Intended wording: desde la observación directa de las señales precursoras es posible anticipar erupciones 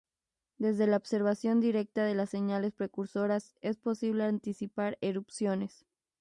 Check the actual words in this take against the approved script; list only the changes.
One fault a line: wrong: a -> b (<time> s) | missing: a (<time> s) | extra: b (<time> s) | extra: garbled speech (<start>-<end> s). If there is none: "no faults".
no faults